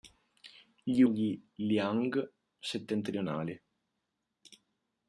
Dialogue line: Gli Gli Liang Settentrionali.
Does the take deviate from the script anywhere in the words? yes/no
no